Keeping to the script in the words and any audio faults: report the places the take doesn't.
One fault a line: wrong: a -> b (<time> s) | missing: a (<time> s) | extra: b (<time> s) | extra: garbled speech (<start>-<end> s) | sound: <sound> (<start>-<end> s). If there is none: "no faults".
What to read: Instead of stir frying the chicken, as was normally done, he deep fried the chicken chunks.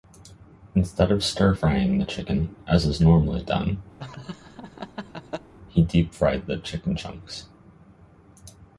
wrong: was -> is (2.8 s)
sound: laugh (4.0-5.5 s)